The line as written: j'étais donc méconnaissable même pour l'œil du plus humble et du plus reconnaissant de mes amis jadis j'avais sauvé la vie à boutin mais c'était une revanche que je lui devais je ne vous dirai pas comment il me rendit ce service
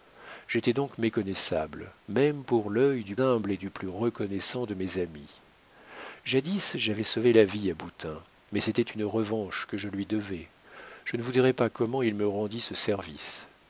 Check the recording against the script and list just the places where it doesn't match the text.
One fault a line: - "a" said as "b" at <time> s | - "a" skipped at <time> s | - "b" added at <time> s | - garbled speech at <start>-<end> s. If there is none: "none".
- "plus" skipped at 3.1 s